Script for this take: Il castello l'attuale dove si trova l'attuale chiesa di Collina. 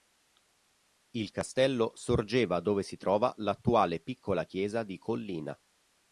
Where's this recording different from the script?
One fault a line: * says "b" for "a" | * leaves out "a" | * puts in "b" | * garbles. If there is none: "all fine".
* says "sorgeva" for "l'attuale"
* puts in "piccola"